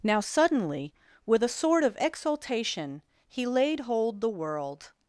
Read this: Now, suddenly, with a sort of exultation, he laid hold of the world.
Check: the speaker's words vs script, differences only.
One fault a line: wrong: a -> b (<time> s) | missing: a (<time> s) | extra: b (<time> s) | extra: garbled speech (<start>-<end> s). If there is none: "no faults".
missing: of (4.2 s)